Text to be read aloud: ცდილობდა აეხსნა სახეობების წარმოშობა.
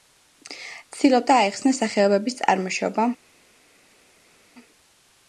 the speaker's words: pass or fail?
pass